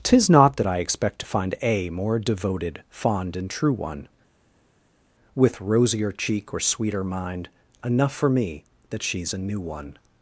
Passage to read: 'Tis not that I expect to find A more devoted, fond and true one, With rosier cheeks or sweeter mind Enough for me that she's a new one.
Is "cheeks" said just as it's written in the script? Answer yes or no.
no